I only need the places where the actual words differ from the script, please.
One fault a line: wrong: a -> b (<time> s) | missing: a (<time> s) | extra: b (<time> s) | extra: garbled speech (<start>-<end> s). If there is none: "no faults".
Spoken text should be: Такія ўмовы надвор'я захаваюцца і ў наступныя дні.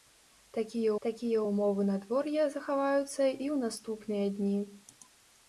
extra: такія (1.1 s)